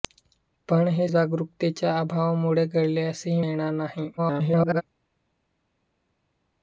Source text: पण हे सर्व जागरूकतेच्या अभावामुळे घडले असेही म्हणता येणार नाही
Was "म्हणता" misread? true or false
true